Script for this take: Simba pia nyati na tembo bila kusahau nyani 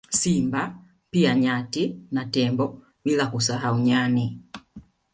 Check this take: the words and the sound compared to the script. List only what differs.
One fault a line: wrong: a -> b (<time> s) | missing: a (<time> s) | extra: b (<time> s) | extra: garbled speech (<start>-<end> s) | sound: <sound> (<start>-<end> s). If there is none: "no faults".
no faults